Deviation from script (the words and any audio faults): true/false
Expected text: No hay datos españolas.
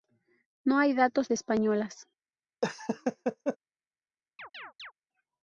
true